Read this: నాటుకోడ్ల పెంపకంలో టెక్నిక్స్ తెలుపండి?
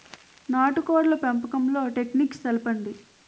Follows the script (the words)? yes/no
yes